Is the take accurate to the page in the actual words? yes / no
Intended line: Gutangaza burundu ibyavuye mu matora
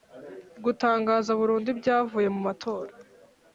yes